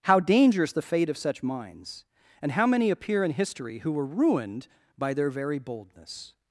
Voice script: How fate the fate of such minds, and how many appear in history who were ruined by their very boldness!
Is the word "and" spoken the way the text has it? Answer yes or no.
yes